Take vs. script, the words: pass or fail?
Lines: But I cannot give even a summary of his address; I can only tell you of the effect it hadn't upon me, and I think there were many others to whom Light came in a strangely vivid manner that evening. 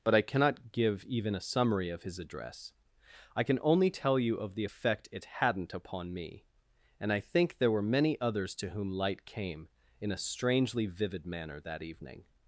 pass